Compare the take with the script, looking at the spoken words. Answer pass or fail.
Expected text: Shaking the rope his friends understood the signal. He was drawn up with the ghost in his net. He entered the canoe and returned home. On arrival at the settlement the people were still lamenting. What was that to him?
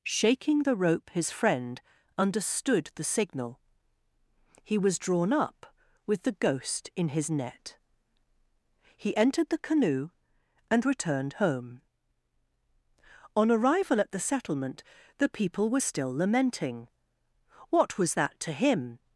fail